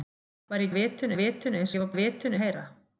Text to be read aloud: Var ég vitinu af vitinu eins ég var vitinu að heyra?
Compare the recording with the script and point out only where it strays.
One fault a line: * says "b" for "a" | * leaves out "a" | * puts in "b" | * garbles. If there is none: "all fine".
all fine